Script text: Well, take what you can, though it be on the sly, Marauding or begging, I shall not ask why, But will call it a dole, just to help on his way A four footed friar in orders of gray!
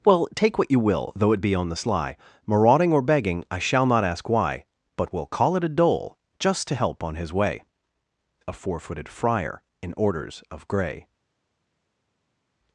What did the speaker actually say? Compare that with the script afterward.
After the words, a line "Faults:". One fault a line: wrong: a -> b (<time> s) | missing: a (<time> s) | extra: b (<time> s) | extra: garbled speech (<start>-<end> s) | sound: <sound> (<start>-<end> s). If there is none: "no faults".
Well, take what you will, though it be on the sly, Marauding or begging, I shall not ask why, But will call it a dole, just to help on his way A four footed friar in orders of gray!
Faults:
wrong: can -> will (0.8 s)